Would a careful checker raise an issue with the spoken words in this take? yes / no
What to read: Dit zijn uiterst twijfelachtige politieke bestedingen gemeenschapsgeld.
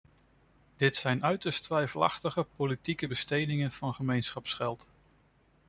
yes